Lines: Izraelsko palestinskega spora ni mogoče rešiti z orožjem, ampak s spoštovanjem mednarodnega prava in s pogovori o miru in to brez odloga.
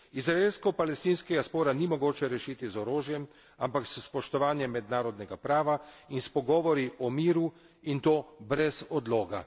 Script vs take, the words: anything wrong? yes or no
no